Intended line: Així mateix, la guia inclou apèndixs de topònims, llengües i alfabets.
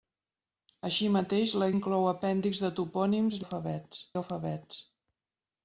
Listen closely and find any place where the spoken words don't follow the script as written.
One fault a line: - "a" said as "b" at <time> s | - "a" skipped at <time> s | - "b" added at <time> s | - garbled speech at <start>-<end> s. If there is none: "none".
- "guia" skipped at 1.7 s
- "llengües" said as "alfabets" at 3.4 s